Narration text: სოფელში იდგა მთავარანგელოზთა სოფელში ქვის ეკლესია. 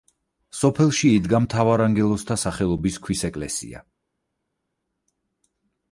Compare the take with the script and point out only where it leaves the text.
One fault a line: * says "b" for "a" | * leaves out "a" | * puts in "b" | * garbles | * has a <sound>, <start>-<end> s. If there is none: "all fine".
* says "სახელობის" for "სოფელში"